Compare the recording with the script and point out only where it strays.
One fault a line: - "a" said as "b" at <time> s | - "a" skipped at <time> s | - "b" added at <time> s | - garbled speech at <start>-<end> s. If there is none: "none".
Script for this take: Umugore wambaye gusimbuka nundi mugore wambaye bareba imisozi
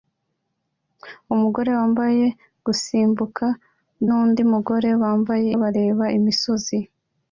none